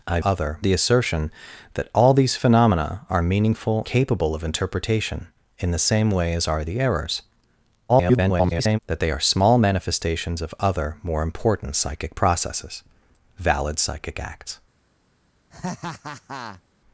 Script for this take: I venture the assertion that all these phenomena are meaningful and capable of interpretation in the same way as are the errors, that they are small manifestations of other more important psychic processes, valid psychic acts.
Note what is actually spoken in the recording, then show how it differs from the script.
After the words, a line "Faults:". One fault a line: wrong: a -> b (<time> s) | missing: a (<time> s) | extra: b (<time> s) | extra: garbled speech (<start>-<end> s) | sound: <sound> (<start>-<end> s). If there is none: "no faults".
I other the assertion that all these phenomena are meaningful capable of interpretation in the same way as are the errors, [garbled] that they are small manifestations of other more important psychic processes, valid psychic acts.
Faults:
wrong: venture -> other (0.2 s)
missing: and (3.8 s)
extra: garbled speech (7.9-8.8 s)
sound: laugh (15.5-16.6 s)